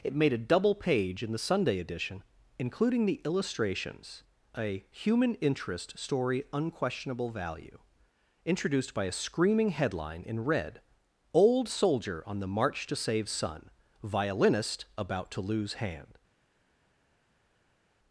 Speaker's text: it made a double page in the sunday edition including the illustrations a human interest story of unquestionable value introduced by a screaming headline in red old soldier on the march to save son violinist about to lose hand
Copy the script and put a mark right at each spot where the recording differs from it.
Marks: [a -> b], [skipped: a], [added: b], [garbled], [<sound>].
it made a double page in the sunday edition including the illustrations a human interest story [skipped: of] unquestionable value introduced by a screaming headline in red old soldier on the march to save son violinist about to lose hand